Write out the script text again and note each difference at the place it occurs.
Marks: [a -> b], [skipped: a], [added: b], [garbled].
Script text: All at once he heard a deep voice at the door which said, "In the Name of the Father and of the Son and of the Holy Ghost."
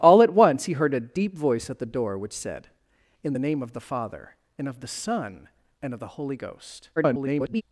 All at once he heard a deep voice at the door which said, "In the Name of the Father and of the Son and of the Holy Ghost." [garbled]